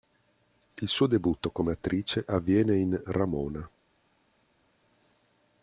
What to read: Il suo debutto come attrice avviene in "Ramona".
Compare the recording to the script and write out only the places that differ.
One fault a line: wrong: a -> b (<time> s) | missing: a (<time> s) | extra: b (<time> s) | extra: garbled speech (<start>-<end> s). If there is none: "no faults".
no faults